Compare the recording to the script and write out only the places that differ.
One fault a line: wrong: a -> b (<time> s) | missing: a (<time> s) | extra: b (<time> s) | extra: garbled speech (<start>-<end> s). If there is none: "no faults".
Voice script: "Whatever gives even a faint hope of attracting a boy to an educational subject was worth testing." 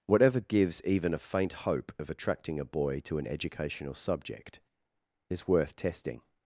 wrong: was -> is (5.3 s)